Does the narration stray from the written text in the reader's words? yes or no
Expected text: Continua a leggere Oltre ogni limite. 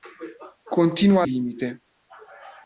yes